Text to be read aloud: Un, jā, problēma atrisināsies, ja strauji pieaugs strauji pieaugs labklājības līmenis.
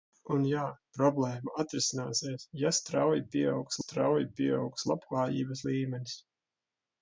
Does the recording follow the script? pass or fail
pass